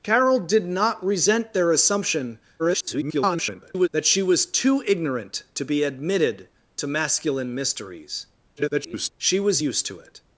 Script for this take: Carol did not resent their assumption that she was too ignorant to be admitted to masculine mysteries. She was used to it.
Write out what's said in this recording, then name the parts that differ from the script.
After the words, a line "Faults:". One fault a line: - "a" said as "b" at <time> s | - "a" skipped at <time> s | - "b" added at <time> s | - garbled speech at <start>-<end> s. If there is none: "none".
Carol did not resent their assumption [garbled] that she was too ignorant to be admitted to masculine mysteries. [garbled] She was used to it.
Faults:
- garbled speech at 2.6-3.9 s
- garbled speech at 8.6-9.1 s